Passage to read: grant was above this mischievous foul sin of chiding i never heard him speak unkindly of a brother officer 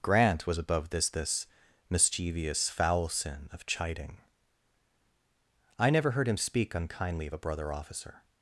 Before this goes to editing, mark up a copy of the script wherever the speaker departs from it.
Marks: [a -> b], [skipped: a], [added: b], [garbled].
grant was above this [added: this] mischievous foul sin of chiding i never heard him speak unkindly of a brother officer